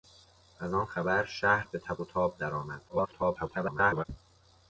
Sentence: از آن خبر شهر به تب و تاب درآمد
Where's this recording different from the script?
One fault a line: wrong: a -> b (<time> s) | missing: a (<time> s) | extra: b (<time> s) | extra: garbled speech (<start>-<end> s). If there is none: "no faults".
extra: garbled speech (2.9-4.1 s)